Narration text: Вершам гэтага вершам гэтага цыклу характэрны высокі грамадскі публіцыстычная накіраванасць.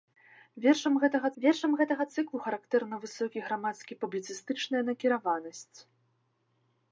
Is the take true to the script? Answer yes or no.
yes